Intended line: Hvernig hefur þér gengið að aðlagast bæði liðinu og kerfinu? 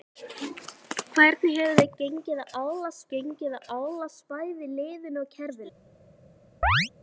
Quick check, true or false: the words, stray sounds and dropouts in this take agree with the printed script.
false